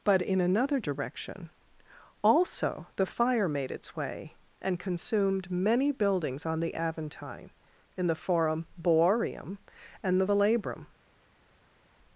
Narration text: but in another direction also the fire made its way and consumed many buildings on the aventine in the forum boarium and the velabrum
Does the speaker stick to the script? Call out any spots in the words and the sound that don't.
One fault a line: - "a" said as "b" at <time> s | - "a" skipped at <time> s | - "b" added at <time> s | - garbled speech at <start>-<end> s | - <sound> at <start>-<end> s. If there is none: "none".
none